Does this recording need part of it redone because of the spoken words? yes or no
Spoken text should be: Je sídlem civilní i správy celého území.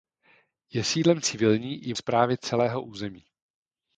no